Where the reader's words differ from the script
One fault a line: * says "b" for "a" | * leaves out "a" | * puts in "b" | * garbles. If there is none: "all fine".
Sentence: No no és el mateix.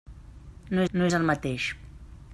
all fine